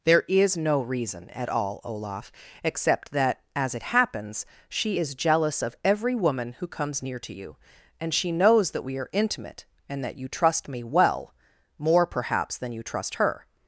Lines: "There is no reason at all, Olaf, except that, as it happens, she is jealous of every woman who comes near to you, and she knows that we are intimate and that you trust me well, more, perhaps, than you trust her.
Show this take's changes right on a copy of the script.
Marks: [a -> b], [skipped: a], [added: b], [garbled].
"There is no reason at all, Olaf, except that, as it happens, she is jealous of every woman who comes near to you, and she knows that we are intimate and that you trust me well, more, perhaps, than you trust her.